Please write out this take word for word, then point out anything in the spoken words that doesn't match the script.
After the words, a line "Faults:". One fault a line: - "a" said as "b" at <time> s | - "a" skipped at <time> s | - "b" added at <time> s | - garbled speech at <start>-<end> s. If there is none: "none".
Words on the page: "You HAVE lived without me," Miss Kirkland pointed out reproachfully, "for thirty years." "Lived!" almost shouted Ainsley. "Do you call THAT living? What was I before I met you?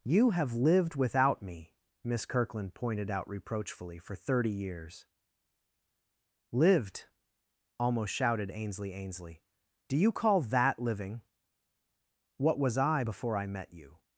"You HAVE lived without me," Miss Kirkland pointed out reproachfully, "for thirty years." "Lived!" almost shouted Ainsley Ainsley. "Do you call THAT living? What was I before I met you?
Faults:
- "Ainsley" added at 8.9 s